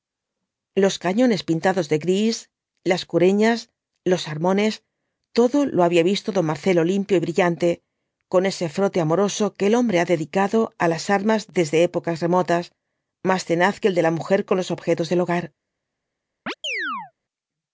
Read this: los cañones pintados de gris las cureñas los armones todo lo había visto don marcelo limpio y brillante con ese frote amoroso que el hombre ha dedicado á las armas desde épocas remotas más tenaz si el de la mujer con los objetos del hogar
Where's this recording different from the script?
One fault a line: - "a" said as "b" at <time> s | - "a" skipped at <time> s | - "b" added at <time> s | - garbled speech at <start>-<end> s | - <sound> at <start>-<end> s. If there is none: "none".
- "si" said as "que" at 13.8 s
- chirp at 16.5-17.1 s